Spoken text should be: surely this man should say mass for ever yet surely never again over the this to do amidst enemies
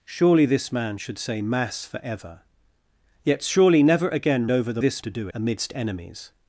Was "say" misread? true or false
false